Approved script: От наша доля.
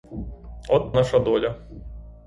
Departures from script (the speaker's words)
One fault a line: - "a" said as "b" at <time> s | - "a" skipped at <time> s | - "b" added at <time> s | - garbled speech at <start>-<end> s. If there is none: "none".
none